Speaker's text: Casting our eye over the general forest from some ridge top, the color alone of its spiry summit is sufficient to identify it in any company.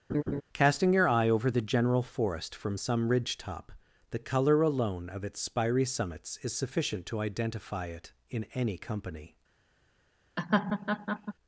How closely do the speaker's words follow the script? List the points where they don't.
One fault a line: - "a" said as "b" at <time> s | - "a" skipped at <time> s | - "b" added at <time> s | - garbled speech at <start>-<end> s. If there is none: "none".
- "our" said as "your" at 0.9 s
- "summit" said as "summits" at 5.8 s